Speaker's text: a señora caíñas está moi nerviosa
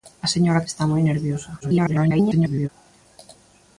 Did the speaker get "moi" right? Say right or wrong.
right